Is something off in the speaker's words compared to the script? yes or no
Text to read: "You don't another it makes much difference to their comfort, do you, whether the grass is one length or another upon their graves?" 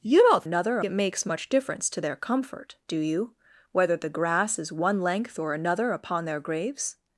no